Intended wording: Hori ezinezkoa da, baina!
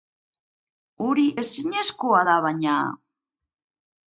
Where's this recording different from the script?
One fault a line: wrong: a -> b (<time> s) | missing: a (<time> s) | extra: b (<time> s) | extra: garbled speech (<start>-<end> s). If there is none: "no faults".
no faults